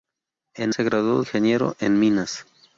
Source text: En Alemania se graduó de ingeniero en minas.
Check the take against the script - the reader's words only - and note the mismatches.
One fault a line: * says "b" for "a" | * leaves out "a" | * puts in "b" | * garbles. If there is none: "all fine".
* leaves out "Alemania"
* leaves out "de"